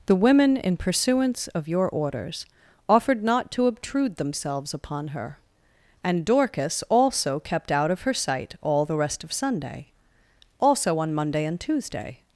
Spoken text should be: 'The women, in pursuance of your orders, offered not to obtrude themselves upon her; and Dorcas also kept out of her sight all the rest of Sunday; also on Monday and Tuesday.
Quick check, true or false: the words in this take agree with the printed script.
true